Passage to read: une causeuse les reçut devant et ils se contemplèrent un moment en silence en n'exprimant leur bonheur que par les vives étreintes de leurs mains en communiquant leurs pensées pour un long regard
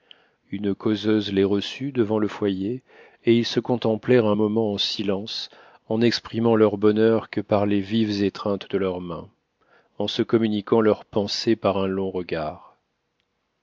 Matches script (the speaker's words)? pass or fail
fail